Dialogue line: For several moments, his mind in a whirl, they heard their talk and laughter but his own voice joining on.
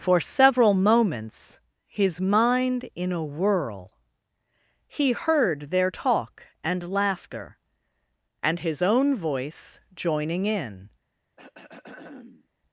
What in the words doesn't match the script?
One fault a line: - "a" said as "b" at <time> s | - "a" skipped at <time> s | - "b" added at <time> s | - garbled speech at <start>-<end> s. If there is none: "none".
- "they" said as "he" at 4.9 s
- "but" said as "and" at 8.4 s
- "on" said as "in" at 10.5 s